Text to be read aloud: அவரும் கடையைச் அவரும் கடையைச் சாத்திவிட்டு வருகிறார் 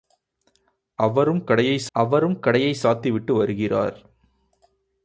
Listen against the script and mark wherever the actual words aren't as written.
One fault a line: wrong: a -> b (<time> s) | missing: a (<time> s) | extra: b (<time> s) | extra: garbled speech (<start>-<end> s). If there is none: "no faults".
no faults